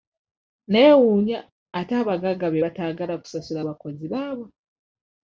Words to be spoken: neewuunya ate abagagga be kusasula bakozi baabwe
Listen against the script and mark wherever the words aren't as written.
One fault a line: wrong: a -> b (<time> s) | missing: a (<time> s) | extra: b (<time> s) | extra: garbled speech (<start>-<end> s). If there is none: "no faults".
extra: bataagala (2.6 s)